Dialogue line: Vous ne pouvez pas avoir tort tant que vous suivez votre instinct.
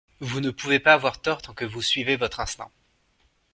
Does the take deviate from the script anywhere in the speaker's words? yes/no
no